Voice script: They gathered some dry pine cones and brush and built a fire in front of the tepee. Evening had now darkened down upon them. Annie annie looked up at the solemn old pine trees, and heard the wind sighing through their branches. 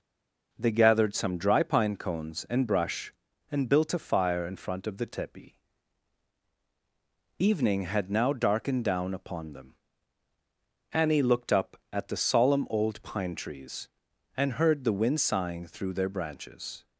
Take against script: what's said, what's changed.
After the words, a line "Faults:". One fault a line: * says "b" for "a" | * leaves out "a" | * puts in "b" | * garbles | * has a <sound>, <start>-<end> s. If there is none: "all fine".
They gathered some dry pine cones and brush and built a fire in front of the tepee. Evening had now darkened down upon them. Annie looked up at the solemn old pine trees, and heard the wind sighing through their branches.
Faults:
* leaves out "annie"